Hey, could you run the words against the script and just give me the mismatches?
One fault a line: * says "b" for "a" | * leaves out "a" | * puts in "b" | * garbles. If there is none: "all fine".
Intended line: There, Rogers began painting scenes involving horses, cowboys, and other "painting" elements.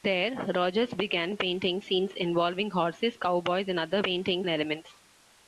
all fine